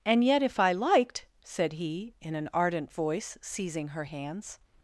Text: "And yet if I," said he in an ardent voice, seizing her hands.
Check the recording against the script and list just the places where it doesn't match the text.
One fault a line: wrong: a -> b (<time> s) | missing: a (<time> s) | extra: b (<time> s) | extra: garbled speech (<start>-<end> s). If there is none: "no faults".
extra: liked (0.7 s)